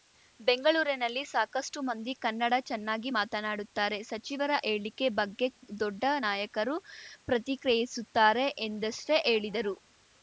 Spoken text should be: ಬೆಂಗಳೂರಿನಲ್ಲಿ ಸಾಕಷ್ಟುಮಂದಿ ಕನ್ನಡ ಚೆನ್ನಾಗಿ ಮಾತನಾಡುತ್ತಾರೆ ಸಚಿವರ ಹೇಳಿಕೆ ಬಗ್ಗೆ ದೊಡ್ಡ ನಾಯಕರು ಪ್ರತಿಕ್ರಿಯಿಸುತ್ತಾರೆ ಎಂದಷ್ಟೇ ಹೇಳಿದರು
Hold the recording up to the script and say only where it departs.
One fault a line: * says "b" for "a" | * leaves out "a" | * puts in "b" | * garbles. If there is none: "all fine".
all fine